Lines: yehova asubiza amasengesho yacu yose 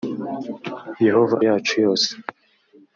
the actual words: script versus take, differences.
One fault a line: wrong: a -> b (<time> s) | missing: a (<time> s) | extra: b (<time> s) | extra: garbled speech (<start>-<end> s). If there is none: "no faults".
missing: asubiza amasengesho (1.4 s)